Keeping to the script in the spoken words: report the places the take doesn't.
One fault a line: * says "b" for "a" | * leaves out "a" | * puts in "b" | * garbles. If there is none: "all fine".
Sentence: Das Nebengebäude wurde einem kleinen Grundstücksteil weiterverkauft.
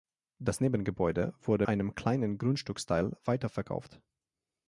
all fine